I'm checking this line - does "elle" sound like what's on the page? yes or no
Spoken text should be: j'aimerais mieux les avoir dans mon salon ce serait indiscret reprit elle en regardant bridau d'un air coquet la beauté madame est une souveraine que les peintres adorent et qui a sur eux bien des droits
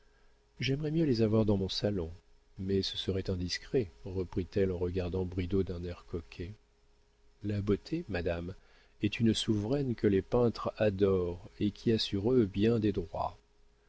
yes